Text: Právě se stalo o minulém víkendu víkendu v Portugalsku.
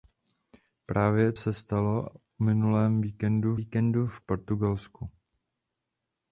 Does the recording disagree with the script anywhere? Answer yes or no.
no